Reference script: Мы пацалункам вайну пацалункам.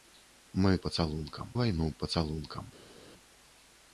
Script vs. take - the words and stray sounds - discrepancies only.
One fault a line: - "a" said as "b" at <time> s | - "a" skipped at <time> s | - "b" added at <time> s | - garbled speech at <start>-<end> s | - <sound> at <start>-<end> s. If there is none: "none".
none